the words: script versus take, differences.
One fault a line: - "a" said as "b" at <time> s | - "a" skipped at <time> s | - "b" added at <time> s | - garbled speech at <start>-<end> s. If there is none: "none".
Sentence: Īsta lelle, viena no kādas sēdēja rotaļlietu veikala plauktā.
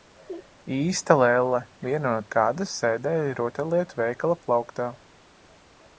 none